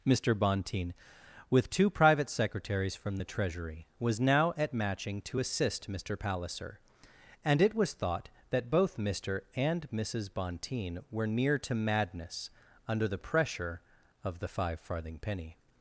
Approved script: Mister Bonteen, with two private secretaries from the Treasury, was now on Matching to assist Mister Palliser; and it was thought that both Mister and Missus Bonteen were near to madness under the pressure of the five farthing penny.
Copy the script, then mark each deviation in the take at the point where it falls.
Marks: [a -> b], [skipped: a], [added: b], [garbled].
Mister Bonteen, with two private secretaries from the Treasury, was now [on -> at] Matching to assist Mister Palliser; and it was thought that both Mister and Missus Bonteen were near to madness under the pressure of the five farthing penny.